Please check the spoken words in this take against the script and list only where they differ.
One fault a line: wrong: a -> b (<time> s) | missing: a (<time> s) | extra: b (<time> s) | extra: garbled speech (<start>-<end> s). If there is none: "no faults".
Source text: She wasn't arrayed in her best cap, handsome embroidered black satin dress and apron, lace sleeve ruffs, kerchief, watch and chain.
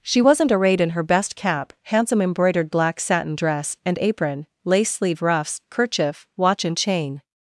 no faults